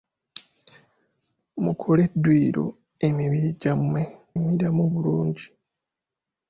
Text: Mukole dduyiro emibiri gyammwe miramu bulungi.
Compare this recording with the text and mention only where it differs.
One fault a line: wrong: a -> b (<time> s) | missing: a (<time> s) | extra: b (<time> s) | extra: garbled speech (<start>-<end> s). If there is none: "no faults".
no faults